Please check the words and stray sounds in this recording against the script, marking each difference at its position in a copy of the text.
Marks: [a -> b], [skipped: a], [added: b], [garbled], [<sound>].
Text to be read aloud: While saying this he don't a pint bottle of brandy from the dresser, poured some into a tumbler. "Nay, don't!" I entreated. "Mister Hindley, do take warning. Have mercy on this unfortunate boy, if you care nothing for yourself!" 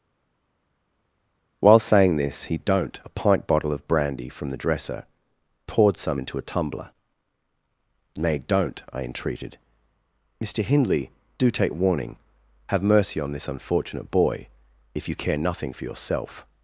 While saying this he don't a pint bottle of brandy from the dresser, poured some into a tumbler. "Nay, don't!" I entreated. "Mister Hindley, do take warning. Have mercy on this unfortunate boy, if you care nothing for yourself!"